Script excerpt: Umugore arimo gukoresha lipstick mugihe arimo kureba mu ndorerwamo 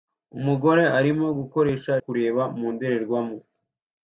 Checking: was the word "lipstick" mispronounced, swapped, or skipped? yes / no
yes